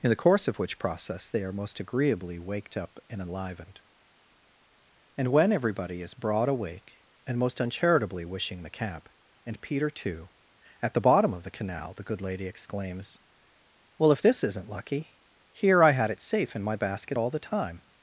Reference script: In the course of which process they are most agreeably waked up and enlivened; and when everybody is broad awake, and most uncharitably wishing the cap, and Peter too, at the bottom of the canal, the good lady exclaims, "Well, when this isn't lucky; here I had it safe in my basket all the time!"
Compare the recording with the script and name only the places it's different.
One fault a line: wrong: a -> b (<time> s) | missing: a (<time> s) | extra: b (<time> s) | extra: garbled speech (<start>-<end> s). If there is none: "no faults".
wrong: when -> if (14.1 s)